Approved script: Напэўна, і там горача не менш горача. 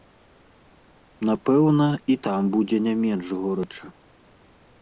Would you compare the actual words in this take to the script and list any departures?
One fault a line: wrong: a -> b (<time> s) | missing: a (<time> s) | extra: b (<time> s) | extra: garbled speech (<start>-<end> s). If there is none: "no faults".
wrong: горача -> будзе (2.6 s)